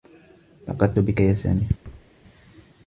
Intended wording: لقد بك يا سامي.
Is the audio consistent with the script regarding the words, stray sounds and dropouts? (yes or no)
no